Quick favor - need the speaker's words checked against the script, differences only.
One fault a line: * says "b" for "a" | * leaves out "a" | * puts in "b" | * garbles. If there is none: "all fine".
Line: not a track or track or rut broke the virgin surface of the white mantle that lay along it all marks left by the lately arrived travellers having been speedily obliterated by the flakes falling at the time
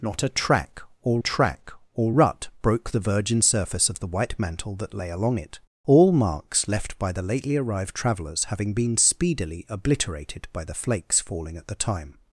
all fine